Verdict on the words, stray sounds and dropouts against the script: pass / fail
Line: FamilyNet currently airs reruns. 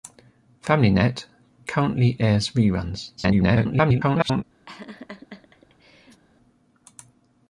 fail